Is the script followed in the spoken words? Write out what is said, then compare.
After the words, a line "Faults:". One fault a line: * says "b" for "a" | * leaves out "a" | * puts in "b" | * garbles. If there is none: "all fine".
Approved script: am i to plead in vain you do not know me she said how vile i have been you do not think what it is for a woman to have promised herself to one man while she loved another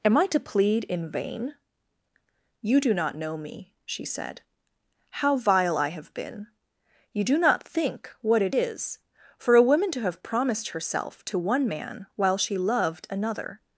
am i to plead in vain you do not know me she said how vile i have been you do not think what it is for a woman to have promised herself to one man while she loved another
Faults:
all fine